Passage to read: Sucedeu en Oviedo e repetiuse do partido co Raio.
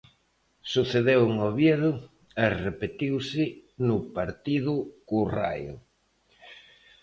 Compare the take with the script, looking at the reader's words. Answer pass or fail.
fail